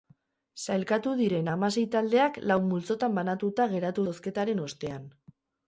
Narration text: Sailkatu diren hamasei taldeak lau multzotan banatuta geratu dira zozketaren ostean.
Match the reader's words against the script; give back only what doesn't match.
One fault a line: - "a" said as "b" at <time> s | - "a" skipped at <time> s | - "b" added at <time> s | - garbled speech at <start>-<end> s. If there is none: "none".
- "dira" skipped at 4.1 s